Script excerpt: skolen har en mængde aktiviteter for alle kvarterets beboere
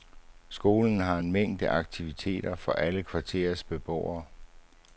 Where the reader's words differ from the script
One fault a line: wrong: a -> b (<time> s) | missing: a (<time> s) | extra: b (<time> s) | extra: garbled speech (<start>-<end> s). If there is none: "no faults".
no faults